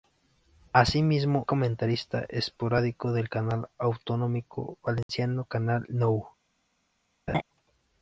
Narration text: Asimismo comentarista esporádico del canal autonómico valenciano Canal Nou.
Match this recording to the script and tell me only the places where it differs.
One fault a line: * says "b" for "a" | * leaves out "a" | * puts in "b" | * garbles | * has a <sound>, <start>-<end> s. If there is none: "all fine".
* has a dropout, 5.0-5.1 s
* has a laugh, 7.3-7.4 s